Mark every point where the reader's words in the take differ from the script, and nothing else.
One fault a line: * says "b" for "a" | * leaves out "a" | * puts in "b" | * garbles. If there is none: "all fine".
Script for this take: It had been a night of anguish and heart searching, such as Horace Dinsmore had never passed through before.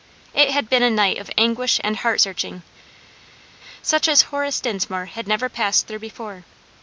all fine